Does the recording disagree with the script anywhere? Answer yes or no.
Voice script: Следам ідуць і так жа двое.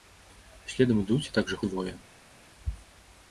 no